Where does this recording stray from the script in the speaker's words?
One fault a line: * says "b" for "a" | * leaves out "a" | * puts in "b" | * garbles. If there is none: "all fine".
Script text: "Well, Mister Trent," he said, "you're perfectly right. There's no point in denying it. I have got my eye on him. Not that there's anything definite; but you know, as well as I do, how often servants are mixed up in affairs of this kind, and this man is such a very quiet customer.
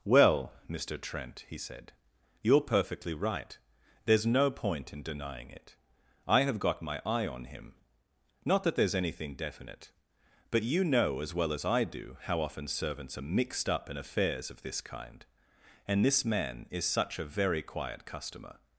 all fine